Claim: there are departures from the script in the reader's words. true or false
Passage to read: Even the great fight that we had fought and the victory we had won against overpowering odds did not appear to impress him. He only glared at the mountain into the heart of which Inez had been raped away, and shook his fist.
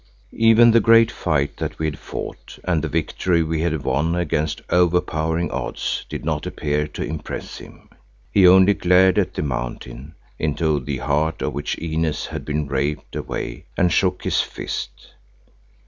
false